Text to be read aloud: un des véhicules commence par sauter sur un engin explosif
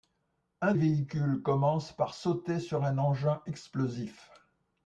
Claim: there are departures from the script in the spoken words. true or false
true